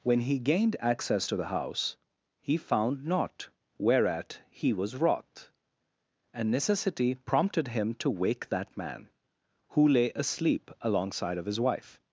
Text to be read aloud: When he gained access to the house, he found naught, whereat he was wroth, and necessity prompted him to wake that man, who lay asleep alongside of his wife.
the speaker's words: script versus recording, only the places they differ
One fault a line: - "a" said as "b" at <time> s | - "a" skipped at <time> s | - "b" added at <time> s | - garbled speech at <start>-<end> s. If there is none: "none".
none